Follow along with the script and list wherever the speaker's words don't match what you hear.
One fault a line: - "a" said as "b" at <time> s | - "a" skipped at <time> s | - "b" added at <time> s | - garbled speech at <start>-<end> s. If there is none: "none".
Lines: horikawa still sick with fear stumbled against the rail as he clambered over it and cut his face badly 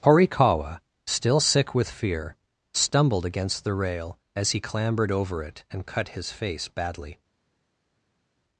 none